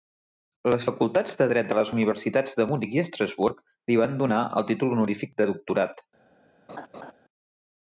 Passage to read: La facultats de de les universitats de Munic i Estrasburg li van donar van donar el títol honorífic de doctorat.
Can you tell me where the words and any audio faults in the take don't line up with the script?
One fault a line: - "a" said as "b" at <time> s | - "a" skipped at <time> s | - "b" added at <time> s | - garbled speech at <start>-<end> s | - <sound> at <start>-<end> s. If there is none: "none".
- "La" said as "Les" at 0.7 s
- "dret" added at 1.5 s
- "van donar" skipped at 4.4 s
- laugh at 6.7-7.1 s